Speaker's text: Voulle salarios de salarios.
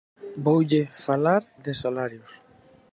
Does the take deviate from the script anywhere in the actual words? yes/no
yes